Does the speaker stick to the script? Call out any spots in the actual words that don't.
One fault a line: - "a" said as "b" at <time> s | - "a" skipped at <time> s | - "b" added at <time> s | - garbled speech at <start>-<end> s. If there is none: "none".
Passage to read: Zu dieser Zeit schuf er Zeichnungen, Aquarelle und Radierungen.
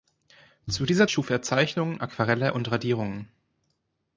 - "Zeit" skipped at 1.1 s